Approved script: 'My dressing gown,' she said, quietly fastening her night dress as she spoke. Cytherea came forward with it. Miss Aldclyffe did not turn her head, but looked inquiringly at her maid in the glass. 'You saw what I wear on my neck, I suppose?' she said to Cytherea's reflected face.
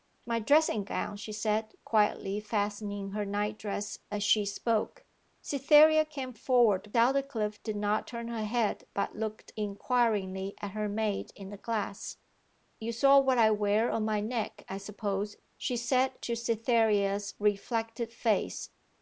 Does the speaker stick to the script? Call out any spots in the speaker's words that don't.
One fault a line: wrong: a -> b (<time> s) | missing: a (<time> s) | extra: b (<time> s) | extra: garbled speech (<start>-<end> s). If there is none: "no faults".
missing: with it Miss (6.9 s)